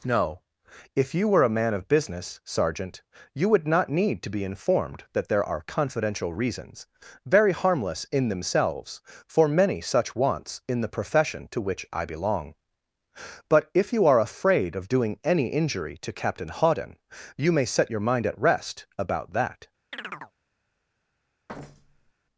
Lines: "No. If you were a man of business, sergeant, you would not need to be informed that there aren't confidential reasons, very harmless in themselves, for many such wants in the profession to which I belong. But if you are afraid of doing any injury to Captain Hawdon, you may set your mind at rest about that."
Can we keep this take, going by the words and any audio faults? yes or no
no